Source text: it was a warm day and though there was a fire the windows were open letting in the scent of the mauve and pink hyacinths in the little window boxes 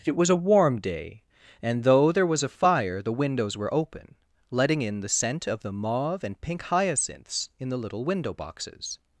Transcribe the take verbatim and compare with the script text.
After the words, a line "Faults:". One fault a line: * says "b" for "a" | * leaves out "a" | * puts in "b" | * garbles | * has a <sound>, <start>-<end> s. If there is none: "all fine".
it was a warm day and though there was a fire the windows were open letting in the scent of the mauve and pink hyacinths in the little window boxes
Faults:
all fine